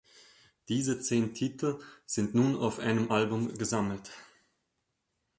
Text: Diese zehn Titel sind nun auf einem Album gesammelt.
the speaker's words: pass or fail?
pass